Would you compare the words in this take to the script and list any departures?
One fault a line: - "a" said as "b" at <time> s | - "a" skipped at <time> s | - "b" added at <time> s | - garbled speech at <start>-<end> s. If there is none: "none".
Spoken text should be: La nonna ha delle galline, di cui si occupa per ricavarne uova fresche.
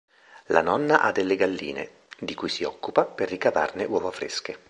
none